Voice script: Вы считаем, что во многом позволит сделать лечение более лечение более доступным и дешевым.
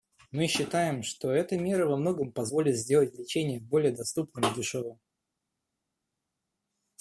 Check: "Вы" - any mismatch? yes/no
yes